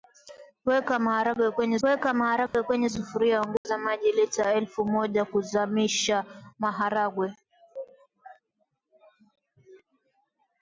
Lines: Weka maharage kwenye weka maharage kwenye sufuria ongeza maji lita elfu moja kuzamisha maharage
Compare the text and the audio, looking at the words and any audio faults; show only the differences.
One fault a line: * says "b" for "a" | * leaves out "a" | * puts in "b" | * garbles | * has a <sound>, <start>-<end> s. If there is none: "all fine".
* has a dropout, 2.5-2.5 s
* has a dropout, 3.6-3.6 s